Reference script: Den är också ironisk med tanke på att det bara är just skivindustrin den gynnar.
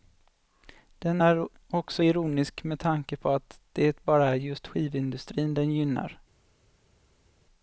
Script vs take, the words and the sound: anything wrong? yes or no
no